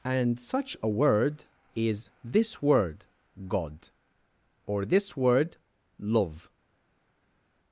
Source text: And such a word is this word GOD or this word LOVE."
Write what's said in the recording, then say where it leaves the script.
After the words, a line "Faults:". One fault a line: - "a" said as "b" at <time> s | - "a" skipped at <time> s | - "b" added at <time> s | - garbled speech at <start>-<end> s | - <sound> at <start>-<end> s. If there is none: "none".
And such a word is this word GOD or this word LOVE."
Faults:
none